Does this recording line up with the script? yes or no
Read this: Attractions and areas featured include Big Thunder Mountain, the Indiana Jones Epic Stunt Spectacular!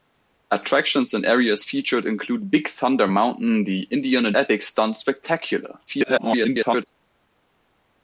no